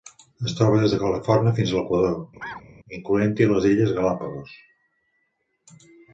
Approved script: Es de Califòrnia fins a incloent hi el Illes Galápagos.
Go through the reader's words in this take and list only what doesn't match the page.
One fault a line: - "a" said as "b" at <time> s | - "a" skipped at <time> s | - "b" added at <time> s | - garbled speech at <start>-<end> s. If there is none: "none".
- "troba des" added at 0.6 s
- "l'Equador" added at 1.8 s
- "el" said as "les" at 3.5 s